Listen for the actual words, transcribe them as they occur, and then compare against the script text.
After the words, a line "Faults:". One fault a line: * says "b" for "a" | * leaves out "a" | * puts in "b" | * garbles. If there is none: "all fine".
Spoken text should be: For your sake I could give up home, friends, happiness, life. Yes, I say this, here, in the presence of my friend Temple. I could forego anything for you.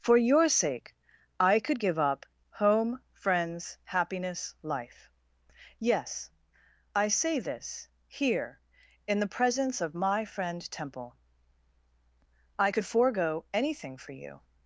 For your sake I could give up home, friends, happiness, life. Yes, I say this, here, in the presence of my friend Temple. I could forego anything for you.
Faults:
all fine